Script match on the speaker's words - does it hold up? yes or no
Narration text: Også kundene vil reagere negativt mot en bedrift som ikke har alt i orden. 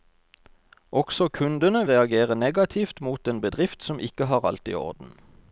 no